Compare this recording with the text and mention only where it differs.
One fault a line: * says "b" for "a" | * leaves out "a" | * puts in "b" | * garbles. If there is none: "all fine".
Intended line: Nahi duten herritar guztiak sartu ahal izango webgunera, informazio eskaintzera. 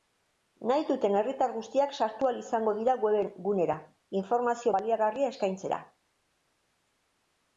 * puts in "dira"
* puts in "baliagarria"